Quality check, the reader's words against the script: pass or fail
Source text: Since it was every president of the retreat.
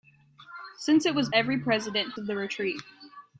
pass